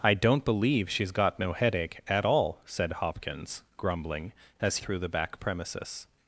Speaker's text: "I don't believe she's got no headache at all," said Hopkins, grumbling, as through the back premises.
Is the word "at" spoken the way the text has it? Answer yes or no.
yes